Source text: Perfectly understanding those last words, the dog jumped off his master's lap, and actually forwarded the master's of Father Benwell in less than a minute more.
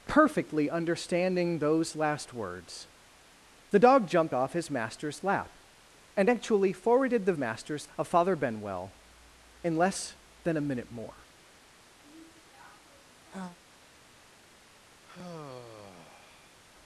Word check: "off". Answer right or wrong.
right